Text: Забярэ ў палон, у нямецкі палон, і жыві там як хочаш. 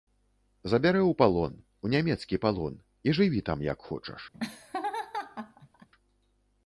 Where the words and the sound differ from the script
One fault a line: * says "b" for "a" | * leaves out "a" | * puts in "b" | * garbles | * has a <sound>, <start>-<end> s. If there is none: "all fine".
* has a laugh, 4.3-5.9 s